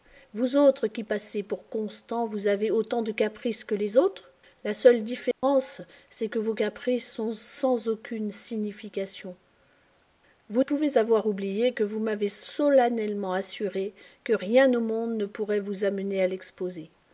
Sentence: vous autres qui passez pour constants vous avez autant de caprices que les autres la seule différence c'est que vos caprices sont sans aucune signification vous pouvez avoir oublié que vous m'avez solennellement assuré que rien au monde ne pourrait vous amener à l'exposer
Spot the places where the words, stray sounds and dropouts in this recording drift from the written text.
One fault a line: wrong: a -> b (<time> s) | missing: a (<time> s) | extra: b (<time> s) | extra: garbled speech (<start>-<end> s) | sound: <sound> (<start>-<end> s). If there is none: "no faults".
sound: dropout (5.3-5.4 s)